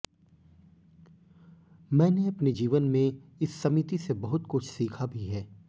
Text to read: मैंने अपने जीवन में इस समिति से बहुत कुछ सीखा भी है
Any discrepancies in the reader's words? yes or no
no